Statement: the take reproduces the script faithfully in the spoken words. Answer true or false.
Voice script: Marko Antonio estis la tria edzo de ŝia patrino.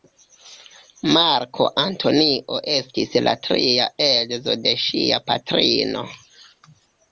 true